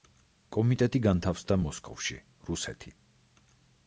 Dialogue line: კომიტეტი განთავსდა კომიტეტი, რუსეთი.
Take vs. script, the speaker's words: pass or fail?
fail